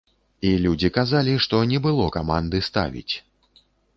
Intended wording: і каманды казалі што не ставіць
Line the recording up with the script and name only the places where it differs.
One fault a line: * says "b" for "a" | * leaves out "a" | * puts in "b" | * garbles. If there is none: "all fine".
* says "людзі" for "каманды"
* puts in "было каманды"